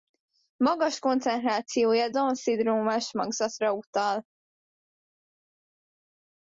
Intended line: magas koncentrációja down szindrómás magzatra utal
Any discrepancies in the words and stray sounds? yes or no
no